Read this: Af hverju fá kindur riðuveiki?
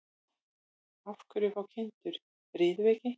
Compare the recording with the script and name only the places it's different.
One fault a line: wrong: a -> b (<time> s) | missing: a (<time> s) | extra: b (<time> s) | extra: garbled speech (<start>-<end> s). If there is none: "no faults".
no faults